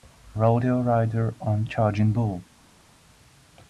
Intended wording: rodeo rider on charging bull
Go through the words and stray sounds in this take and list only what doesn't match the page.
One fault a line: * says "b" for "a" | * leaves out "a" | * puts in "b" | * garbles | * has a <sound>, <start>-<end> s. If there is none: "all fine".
all fine